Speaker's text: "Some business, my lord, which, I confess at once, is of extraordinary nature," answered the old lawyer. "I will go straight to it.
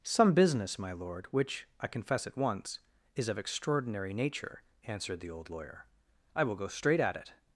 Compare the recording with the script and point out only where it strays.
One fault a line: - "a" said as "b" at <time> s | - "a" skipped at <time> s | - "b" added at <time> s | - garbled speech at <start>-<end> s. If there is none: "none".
- "to" said as "at" at 7.0 s